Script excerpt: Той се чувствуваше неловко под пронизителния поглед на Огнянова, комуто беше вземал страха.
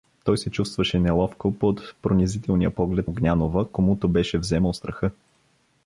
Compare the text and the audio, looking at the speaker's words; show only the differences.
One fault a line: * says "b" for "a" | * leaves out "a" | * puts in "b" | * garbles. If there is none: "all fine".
* leaves out "на"